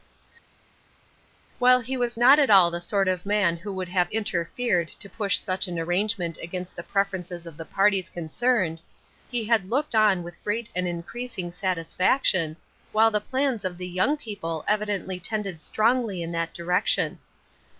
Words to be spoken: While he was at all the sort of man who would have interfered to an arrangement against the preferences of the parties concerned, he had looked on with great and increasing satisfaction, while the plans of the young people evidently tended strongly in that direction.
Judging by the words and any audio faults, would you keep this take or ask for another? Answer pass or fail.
fail